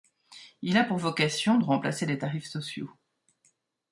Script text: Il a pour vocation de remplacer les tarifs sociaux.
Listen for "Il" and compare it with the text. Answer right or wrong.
right